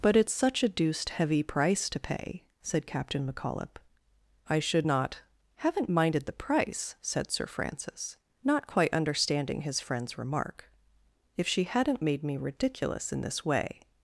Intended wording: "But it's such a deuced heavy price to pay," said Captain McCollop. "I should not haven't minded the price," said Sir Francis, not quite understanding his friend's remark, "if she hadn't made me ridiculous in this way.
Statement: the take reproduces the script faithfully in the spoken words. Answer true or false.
true